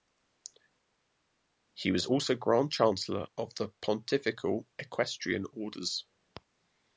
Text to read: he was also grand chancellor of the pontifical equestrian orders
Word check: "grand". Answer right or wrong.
right